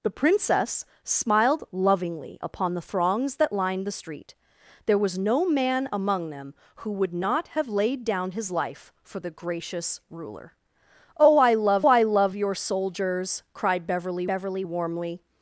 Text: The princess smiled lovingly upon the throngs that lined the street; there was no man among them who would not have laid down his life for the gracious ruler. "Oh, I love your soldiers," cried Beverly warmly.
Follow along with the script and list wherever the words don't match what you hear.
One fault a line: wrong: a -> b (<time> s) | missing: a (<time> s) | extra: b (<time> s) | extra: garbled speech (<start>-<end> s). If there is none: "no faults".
extra: I love (11.9 s)
extra: Beverly (14.2 s)